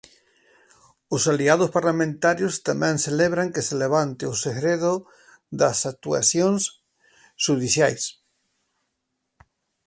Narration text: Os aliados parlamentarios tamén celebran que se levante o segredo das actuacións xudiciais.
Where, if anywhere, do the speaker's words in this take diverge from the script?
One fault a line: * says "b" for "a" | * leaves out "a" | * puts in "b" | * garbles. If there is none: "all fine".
all fine